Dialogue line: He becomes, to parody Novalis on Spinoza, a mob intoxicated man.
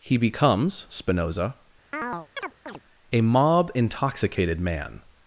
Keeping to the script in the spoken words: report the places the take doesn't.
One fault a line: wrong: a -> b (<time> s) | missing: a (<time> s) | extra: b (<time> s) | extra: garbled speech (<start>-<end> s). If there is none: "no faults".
missing: to parody Novalis on (0.9 s)